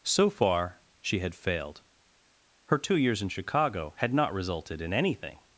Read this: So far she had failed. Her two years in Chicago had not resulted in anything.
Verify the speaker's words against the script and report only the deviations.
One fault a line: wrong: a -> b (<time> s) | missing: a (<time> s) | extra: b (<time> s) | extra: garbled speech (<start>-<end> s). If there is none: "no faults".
no faults